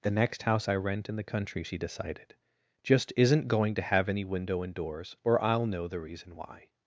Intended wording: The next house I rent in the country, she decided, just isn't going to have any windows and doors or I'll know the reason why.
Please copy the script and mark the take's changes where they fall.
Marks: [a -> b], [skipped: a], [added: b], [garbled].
The next house I rent in the country, she decided, just isn't going to have any [windows -> window] and doors or I'll know the reason why.